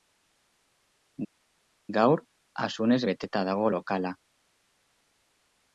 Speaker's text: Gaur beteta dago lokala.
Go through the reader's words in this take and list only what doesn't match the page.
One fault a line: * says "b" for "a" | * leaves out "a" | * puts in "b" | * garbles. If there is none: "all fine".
* puts in "asunez"